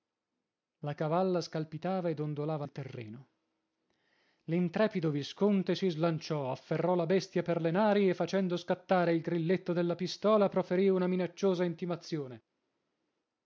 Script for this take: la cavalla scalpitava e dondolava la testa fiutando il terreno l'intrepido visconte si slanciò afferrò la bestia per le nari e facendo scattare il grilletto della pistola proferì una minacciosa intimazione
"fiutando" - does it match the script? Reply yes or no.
no